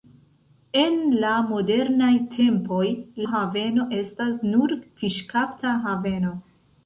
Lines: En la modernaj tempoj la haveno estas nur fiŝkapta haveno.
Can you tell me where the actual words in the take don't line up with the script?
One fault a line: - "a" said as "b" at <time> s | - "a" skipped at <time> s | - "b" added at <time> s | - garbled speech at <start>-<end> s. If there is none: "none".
- "la" skipped at 2.9 s